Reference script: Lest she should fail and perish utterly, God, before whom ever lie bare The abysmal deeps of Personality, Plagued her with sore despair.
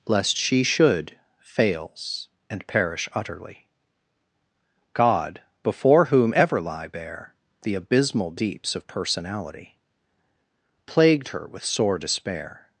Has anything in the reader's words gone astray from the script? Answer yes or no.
yes